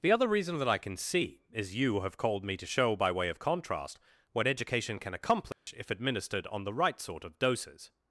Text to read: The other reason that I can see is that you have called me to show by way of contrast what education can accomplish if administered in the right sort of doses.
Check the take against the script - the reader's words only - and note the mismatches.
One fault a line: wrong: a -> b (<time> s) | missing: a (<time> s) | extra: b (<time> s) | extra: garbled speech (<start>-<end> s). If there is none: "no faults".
missing: that (1.8 s)
wrong: in -> on (6.5 s)